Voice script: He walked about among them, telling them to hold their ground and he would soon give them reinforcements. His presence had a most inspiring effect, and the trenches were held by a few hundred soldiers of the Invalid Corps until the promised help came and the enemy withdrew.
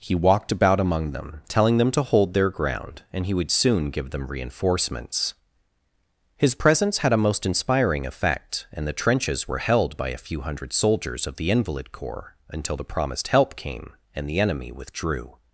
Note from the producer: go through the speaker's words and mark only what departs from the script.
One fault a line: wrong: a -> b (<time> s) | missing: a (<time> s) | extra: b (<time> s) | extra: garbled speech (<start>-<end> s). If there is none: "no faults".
no faults